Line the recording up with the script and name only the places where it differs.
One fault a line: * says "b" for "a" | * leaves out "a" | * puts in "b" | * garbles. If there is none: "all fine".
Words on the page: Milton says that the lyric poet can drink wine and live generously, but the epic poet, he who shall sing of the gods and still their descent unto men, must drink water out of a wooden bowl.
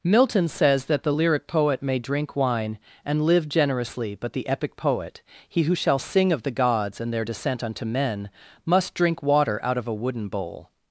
* says "may" for "can"
* leaves out "still"